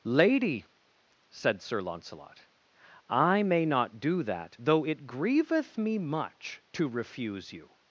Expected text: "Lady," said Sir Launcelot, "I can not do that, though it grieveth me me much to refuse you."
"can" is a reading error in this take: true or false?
true